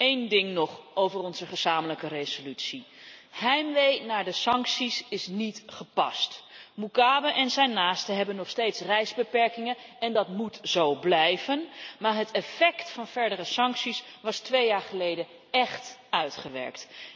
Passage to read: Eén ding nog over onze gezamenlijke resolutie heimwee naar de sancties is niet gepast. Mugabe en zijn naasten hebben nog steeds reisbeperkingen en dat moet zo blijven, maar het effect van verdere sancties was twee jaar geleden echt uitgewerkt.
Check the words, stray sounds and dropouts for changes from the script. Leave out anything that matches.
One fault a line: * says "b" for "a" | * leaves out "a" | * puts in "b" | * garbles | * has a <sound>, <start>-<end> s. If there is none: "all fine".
all fine